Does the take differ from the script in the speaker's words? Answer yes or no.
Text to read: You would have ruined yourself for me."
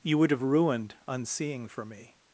yes